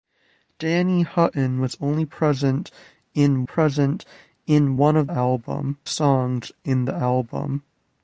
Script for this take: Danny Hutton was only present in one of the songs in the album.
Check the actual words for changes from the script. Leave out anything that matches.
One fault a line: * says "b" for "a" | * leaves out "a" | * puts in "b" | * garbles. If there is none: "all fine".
* puts in "present in"
* says "album" for "the"